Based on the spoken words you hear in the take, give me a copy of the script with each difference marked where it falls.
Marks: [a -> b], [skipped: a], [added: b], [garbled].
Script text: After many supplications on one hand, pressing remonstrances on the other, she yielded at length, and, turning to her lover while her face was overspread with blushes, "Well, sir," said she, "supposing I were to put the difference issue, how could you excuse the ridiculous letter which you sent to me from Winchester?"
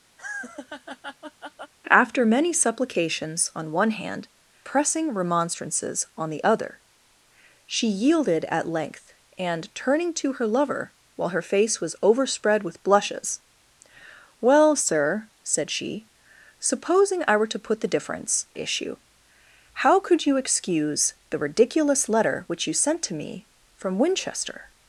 After many supplications on one hand, pressing remonstrances on the other, she yielded at length, and, turning to her lover while her face was overspread with blushes, "Well, sir," said she, "supposing I were to put the difference issue, how could you excuse the ridiculous letter which you sent to me from Winchester?"